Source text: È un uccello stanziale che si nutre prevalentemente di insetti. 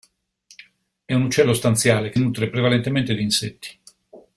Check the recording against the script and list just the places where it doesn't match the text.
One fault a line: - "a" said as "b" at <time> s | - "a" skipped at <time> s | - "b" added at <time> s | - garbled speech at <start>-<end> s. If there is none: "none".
- "si" skipped at 2.2 s